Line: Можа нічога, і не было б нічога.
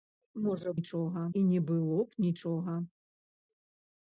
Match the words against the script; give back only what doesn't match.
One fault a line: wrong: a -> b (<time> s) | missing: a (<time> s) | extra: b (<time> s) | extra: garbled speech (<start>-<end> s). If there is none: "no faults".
no faults